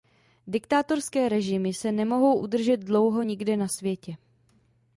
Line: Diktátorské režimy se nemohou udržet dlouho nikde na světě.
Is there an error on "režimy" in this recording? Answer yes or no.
no